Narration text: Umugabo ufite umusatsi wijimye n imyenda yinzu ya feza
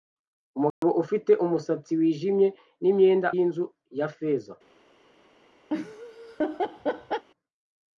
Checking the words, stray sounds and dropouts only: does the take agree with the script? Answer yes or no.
no